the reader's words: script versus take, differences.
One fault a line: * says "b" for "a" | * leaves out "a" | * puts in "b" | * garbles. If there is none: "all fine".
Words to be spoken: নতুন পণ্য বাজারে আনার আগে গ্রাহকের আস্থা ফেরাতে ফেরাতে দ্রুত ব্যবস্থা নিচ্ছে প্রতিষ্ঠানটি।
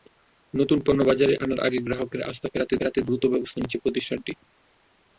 all fine